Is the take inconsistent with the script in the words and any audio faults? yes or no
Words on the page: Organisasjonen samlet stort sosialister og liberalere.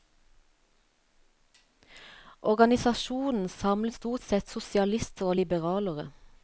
yes